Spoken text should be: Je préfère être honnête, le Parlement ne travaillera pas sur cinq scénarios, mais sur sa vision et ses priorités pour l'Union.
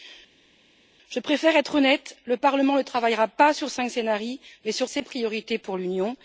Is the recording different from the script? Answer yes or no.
yes